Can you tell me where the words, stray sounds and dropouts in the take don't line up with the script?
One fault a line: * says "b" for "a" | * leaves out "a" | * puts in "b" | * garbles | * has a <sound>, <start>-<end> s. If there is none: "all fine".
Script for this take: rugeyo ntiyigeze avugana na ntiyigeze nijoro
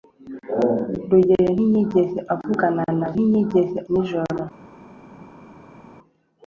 all fine